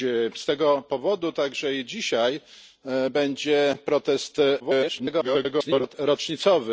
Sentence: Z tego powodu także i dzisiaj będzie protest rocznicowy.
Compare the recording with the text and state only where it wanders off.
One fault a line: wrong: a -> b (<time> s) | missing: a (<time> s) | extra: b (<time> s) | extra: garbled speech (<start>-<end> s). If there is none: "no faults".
extra: garbled speech (4.6-5.9 s)